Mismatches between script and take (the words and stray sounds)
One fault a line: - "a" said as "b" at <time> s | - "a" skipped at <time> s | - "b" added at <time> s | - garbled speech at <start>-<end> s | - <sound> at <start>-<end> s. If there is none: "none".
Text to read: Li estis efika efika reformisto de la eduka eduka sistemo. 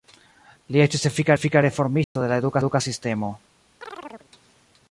- dropout at 2.0-2.2 s
- chirp at 3.8-4.3 s